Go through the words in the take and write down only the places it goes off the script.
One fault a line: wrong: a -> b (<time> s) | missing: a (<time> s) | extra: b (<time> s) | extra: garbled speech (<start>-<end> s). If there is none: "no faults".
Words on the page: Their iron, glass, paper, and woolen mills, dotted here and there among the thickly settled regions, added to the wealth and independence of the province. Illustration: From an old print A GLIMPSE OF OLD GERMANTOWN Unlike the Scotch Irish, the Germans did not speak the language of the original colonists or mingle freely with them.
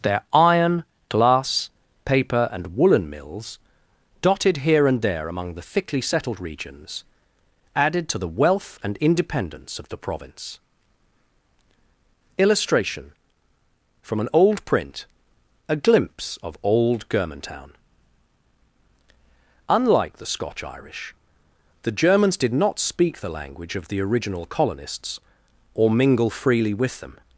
no faults